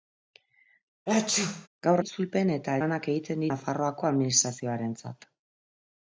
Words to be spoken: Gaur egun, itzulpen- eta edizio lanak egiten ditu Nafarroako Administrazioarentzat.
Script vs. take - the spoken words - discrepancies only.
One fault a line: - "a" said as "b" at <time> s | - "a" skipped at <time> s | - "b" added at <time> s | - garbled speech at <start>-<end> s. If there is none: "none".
- "egun" skipped at 2.0 s
- "edizio" skipped at 2.8 s
- "ditu" skipped at 3.5 s